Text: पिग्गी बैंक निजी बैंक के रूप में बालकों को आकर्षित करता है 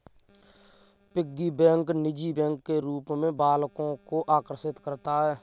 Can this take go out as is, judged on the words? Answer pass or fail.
pass